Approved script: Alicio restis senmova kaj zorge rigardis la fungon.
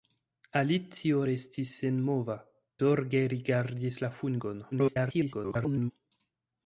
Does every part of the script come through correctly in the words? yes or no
no